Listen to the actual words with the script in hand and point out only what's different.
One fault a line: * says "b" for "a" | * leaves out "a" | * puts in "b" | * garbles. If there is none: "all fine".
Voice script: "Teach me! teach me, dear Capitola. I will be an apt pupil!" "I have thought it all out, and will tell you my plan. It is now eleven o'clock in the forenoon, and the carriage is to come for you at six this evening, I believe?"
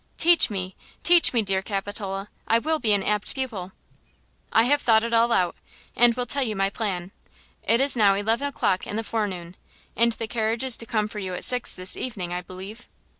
all fine